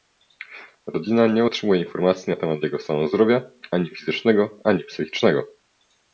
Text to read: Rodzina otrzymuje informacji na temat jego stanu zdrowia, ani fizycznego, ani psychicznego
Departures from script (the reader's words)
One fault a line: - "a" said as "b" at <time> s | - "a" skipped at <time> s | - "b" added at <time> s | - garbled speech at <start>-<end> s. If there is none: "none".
- "nie" added at 1.3 s